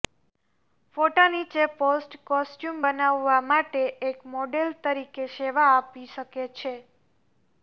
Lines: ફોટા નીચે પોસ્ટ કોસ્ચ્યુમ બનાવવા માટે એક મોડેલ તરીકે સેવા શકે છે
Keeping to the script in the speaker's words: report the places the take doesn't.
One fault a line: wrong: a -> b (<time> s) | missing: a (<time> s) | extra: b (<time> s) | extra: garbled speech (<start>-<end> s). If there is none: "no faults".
extra: આપી (5.7 s)